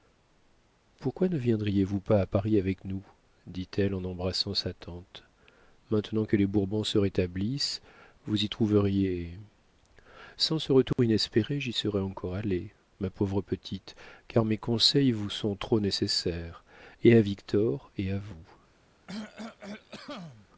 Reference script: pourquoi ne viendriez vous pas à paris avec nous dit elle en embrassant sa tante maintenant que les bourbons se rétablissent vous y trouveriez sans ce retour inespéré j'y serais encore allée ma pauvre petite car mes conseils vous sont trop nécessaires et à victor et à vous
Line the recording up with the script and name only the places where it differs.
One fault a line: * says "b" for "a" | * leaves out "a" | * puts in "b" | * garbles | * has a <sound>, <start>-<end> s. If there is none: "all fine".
* has a dropout, 10.9-11.0 s
* has a cough, 19.1-20.5 s